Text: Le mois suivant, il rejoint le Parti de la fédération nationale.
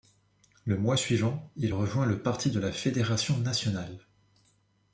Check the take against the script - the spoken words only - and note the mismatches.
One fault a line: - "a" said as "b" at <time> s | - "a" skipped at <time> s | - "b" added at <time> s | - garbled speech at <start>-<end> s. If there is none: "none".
none